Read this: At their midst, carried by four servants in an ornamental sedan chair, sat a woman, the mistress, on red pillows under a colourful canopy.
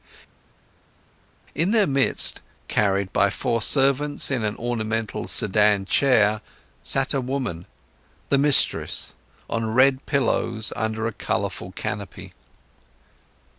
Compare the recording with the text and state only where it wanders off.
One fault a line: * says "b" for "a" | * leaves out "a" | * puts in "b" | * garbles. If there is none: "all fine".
* says "In" for "At"